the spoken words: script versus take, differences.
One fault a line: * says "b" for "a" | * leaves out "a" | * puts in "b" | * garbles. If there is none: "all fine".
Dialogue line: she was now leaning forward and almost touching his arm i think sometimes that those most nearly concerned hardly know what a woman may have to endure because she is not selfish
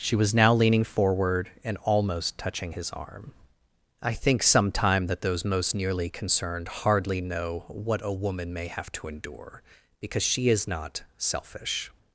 * says "sometime" for "sometimes"